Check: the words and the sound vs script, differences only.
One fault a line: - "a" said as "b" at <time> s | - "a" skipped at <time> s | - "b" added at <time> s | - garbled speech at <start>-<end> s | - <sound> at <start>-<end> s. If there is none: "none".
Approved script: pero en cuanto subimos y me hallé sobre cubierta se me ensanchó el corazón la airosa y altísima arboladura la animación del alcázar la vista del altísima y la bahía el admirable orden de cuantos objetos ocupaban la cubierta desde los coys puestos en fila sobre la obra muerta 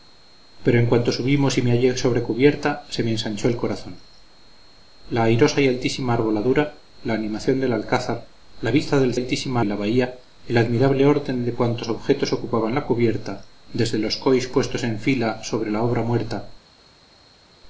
none